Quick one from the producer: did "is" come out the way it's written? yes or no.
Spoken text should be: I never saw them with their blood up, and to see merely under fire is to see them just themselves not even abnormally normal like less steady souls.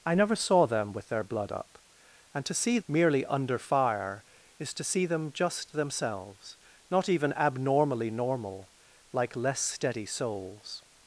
yes